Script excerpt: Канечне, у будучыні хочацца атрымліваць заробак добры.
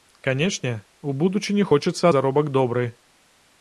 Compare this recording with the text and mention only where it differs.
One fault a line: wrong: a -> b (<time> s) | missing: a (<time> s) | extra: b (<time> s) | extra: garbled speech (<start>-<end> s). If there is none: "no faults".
missing: атрымліваць (2.0 s)